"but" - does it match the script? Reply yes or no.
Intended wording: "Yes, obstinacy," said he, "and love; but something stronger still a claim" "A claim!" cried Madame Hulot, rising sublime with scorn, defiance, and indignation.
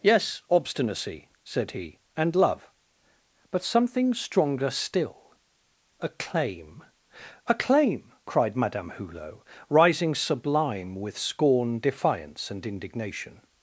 yes